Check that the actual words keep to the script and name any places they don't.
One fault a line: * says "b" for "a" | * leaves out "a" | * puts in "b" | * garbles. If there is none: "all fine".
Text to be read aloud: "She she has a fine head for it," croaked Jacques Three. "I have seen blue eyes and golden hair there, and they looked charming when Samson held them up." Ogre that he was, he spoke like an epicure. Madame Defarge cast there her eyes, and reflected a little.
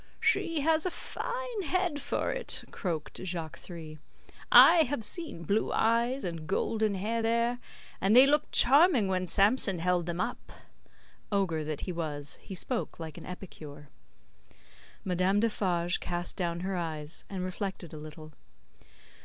* leaves out "she"
* says "down" for "there"